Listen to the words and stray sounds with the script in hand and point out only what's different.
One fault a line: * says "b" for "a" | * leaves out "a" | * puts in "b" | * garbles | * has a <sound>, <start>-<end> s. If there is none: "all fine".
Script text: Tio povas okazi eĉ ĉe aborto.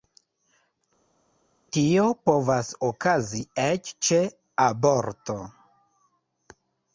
all fine